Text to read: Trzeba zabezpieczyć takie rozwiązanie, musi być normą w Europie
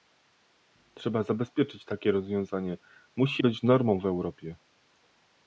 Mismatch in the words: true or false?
false